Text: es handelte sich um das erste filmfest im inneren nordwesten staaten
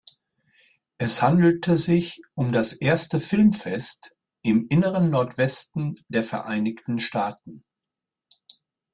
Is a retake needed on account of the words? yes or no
yes